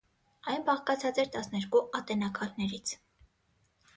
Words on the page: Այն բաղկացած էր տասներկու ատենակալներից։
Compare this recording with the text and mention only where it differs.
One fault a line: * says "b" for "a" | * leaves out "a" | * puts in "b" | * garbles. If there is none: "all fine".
all fine